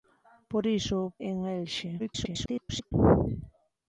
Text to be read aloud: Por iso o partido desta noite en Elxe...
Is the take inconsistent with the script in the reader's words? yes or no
yes